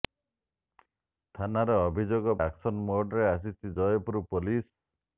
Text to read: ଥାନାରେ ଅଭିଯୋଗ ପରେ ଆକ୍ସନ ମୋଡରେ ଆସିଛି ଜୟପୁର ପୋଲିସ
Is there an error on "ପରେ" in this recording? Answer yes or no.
yes